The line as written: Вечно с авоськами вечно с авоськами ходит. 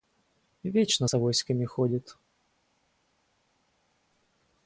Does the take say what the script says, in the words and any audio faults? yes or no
no